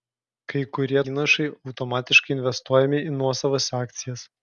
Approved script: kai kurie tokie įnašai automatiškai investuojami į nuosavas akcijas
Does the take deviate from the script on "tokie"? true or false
true